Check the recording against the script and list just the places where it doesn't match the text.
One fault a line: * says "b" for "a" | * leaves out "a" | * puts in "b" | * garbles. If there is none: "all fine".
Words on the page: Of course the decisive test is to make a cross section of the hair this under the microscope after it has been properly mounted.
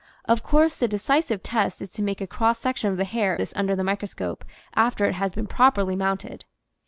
all fine